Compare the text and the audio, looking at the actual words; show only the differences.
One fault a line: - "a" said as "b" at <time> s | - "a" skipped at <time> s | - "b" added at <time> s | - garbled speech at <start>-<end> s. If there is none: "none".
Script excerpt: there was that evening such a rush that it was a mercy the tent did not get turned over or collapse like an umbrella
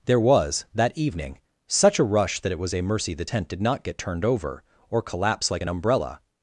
none